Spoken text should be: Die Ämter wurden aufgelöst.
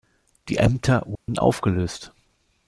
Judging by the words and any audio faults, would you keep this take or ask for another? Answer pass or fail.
fail